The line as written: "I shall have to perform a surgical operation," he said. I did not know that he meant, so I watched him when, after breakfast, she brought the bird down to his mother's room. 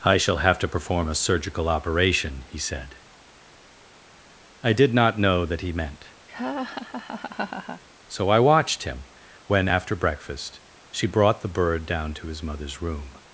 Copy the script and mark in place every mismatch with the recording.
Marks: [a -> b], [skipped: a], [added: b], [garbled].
"I shall have to perform a surgical operation," he said. I did not know that he meant, so I watched him when, after breakfast, she brought the bird down to his mother's room.